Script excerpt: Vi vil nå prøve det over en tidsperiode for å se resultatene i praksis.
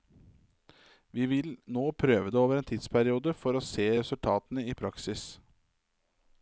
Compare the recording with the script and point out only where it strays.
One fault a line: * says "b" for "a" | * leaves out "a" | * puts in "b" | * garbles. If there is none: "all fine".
all fine